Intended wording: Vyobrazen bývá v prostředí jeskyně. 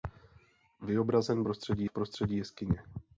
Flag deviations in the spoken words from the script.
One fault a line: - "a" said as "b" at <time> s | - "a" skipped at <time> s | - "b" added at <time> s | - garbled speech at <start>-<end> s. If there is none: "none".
- "bývá" said as "prostředí" at 1.4 s